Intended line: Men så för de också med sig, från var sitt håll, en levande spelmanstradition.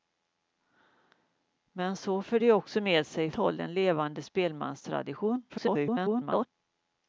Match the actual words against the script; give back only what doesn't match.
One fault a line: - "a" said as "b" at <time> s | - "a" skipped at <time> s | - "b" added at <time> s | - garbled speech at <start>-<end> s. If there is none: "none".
- "från var sitt" skipped at 3.3 s
- garbled speech at 5.5-6.5 s